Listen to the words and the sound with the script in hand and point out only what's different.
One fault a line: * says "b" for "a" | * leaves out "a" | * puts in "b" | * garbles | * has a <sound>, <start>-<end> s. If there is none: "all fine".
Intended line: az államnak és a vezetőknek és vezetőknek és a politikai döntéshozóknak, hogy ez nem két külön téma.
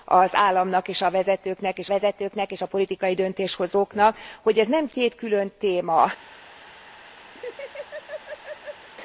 * has a laugh, 7.4-8.9 s